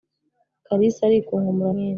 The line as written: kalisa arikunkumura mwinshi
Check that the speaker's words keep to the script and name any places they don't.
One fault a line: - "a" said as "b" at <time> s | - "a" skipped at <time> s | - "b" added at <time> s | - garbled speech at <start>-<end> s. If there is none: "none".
none